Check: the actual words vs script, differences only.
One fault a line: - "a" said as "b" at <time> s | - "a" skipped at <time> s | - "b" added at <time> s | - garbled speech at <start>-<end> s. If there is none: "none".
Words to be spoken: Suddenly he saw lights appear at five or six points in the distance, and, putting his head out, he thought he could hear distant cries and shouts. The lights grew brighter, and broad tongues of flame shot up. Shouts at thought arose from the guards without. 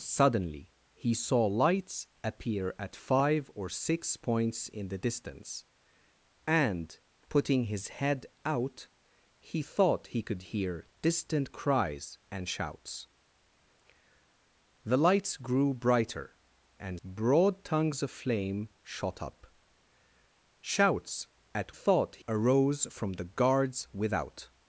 none